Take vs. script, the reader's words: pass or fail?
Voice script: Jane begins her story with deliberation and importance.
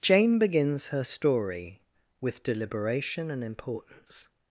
pass